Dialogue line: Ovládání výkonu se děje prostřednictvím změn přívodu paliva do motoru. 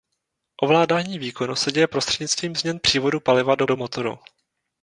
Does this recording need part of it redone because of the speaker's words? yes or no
yes